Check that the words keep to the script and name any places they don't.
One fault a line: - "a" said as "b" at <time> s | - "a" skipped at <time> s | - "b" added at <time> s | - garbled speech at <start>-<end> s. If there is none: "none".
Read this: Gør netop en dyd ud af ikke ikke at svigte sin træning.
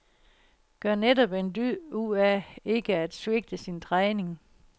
- "ikke" skipped at 3.0 s